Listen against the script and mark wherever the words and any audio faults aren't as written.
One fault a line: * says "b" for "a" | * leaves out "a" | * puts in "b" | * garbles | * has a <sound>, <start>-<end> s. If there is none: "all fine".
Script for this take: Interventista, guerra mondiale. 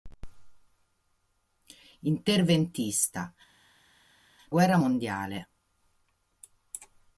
all fine